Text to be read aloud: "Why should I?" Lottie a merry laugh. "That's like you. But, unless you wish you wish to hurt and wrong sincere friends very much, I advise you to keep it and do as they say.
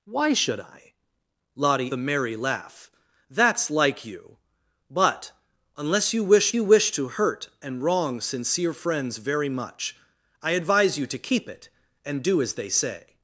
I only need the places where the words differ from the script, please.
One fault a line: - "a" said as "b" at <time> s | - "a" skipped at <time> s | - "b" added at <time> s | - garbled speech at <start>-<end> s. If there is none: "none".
none